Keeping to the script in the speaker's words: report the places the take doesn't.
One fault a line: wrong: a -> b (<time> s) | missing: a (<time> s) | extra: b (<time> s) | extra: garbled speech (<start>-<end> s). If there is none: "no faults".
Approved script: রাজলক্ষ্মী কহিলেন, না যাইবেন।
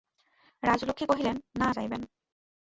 no faults